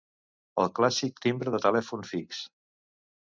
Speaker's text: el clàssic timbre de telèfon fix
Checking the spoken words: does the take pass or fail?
pass